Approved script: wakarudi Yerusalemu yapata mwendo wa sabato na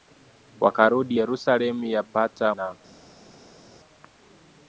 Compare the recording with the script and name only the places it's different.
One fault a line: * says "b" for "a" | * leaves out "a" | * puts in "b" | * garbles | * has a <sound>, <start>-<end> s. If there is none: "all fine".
* leaves out "mwendo wa sabato"